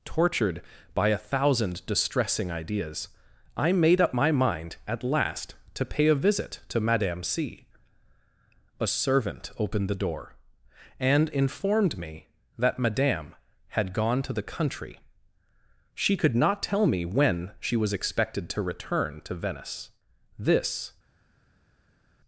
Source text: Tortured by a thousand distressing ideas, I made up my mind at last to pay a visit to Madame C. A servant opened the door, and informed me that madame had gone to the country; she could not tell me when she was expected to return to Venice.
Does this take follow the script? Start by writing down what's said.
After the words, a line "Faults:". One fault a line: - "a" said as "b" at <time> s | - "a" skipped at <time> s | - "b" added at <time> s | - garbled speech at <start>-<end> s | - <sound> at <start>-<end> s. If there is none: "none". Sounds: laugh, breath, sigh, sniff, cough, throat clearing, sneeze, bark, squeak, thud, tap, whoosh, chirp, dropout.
Tortured by a thousand distressing ideas, I made up my mind at last to pay a visit to Madame C. A servant opened the door, and informed me that madame had gone to the country; she could not tell me when she was expected to return to Venice. This
Faults:
- "This" added at 20.4 s